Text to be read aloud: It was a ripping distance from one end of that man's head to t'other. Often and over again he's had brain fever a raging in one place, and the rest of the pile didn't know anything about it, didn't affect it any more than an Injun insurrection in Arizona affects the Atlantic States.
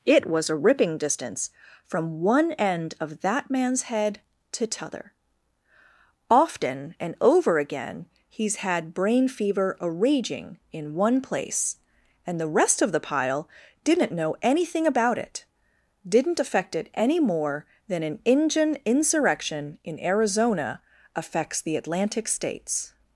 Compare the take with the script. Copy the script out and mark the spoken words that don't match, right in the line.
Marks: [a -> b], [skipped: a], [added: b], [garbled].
It was a ripping distance from one end of that man's head to t'other. Often and over again he's had brain fever a raging in one place, and the rest of the pile didn't know anything about it, didn't affect it any more than an Injun insurrection in Arizona affects the Atlantic States.